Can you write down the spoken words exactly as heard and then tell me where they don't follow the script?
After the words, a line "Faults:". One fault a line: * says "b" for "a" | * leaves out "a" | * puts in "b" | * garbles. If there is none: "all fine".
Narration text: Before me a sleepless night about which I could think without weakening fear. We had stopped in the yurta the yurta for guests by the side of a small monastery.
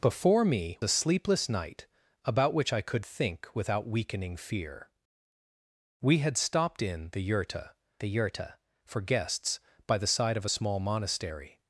Before me a sleepless night about which I could think without weakening fear. We had stopped in the yurta the yurta for guests by the side of a small monastery.
Faults:
all fine